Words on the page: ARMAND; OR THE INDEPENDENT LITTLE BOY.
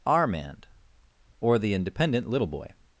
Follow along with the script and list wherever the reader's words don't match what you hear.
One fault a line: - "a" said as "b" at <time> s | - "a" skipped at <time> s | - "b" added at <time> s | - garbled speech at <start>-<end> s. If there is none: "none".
none